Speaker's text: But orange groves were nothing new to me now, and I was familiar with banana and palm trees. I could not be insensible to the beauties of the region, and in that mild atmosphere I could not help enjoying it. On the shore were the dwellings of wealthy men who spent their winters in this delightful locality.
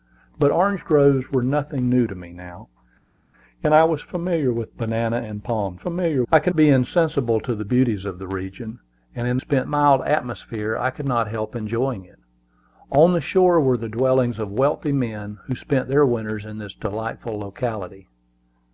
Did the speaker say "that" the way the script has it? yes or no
no